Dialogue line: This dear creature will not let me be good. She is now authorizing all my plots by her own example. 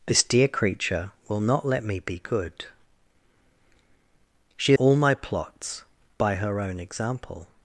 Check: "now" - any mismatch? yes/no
yes